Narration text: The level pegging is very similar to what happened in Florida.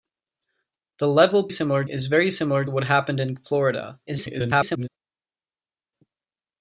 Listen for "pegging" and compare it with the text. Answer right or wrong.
wrong